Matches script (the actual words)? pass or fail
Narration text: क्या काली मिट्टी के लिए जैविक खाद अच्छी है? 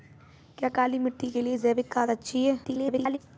fail